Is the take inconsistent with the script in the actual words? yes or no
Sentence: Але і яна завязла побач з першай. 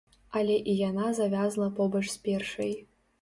no